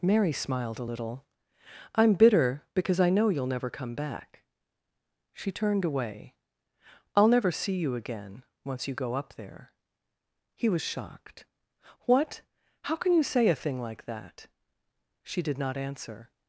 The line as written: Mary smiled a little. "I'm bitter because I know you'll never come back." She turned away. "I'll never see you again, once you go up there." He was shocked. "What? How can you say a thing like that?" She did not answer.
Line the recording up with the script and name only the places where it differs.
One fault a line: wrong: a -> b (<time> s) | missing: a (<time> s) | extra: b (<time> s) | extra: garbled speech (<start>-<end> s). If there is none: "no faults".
no faults